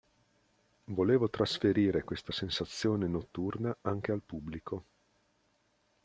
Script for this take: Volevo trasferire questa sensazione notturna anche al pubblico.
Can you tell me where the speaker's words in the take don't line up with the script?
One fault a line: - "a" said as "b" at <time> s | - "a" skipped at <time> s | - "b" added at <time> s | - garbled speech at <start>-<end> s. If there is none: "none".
none